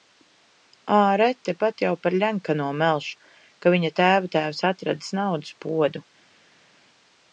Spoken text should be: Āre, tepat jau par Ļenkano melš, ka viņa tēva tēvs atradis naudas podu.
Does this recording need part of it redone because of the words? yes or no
no